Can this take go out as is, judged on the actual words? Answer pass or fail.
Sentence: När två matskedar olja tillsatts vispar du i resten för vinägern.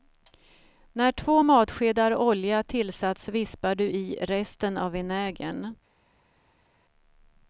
fail